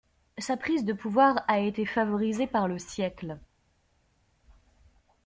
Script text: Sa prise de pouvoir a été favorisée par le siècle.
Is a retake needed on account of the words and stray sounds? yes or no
no